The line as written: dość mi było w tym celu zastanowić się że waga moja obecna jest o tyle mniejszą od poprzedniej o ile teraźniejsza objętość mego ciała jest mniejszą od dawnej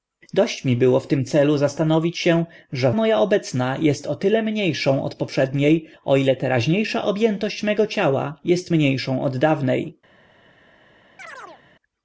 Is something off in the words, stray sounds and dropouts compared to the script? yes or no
yes